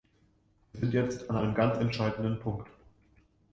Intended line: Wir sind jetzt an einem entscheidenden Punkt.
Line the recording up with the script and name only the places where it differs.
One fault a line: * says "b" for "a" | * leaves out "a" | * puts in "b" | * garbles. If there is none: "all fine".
* puts in "ganz"